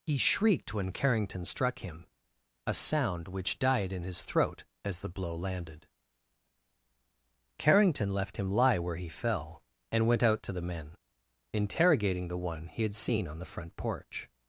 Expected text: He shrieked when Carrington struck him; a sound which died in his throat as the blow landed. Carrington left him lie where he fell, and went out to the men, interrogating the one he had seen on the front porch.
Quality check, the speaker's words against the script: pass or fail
pass